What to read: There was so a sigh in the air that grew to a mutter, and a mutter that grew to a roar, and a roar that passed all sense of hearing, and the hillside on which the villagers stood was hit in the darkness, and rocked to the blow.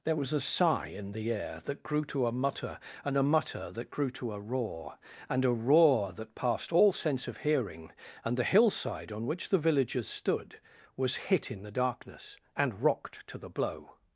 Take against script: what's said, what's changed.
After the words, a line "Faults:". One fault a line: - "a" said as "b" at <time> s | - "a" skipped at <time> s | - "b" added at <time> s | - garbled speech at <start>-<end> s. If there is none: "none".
There was a sigh in the air that grew to a mutter, and a mutter that grew to a roar, and a roar that passed all sense of hearing, and the hillside on which the villagers stood was hit in the darkness, and rocked to the blow.
Faults:
- "so" skipped at 0.3 s